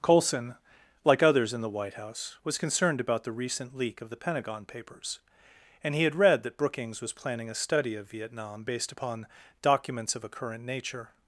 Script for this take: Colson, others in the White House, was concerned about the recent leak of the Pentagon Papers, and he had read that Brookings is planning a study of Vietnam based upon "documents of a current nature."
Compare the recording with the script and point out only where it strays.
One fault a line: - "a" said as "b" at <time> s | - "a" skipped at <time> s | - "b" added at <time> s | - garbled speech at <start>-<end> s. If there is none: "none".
- "like" added at 1.0 s
- "is" said as "was" at 7.0 s